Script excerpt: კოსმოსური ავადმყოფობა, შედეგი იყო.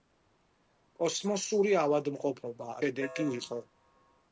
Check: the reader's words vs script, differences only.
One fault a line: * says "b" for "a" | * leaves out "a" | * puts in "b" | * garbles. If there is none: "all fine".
all fine